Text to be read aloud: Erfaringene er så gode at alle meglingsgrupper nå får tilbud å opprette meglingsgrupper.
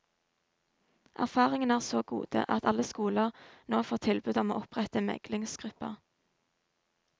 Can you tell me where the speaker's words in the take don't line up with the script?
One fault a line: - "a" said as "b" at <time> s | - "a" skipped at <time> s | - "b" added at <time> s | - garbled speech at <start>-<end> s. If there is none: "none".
- "meglingsgrupper" said as "skoler" at 2.9 s
- "om" added at 4.4 s